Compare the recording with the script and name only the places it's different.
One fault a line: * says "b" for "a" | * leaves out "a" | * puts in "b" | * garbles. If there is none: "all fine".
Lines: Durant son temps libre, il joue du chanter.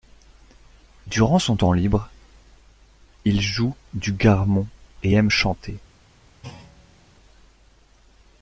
* puts in "garmon et aime"